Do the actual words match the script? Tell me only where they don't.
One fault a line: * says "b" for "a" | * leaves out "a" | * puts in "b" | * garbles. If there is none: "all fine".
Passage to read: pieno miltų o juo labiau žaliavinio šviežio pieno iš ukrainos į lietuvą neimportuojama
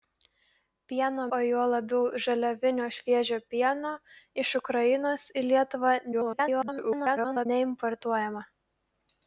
* leaves out "miltų"
* garbles